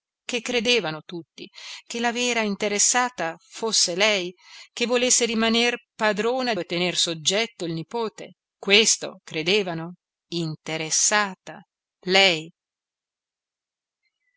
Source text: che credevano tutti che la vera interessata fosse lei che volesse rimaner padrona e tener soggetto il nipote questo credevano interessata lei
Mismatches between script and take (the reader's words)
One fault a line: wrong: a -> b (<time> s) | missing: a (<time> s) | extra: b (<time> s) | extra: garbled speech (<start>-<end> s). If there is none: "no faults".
no faults